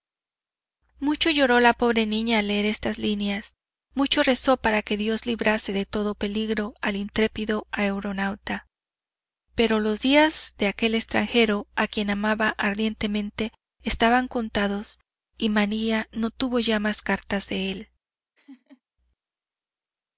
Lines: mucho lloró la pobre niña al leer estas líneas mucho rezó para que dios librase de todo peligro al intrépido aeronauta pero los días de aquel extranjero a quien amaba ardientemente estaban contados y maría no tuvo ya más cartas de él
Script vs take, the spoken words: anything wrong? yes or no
no